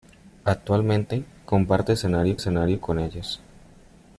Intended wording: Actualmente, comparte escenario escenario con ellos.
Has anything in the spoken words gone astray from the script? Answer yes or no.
no